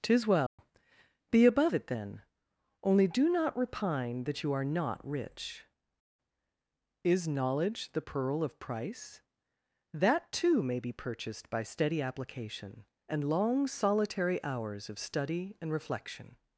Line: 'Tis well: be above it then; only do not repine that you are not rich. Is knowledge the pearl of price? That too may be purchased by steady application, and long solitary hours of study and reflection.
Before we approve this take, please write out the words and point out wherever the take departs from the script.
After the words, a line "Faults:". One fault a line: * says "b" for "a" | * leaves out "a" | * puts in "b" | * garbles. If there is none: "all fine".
'Tis well: be above it then; only do not repine that you are not rich. Is knowledge the pearl of price? That too may be purchased by steady application, and long solitary hours of study and reflection.
Faults:
all fine